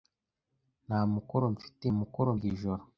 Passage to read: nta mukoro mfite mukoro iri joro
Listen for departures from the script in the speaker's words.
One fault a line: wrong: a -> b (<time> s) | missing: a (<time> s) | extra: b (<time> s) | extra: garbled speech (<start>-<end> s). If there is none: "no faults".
no faults